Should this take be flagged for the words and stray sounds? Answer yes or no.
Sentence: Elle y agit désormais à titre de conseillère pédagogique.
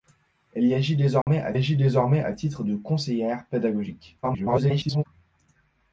yes